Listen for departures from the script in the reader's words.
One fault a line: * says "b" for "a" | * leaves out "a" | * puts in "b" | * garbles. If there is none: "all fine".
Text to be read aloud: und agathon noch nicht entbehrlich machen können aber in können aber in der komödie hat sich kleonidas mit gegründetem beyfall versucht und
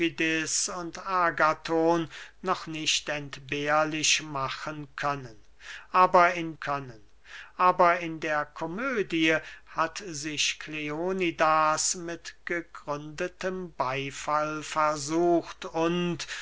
all fine